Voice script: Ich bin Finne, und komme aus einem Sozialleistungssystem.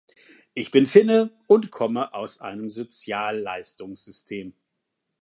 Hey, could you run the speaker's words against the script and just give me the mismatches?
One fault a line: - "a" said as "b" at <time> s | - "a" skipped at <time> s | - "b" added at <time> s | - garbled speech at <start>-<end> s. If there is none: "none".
none